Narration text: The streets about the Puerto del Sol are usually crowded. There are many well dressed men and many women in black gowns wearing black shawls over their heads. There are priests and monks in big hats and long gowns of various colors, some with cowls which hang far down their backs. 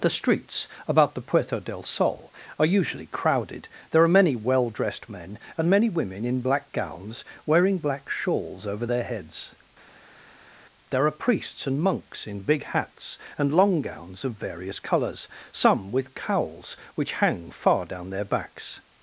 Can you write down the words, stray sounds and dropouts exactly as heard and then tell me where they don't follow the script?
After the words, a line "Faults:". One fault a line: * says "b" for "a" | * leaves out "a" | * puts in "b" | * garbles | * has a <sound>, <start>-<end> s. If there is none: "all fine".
The streets about the Puerto del Sol are usually crowded. There are many well dressed men and many women in black gowns wearing black shawls over their heads. There are priests and monks in big hats and long gowns of various colors, some with cowls which hang far down their backs.
Faults:
all fine